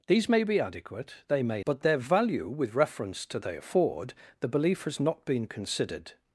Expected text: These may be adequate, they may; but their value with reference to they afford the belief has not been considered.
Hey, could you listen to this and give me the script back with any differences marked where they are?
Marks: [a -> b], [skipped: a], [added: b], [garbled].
These may be adequate, they may; but their value with reference to they afford the belief has not been considered.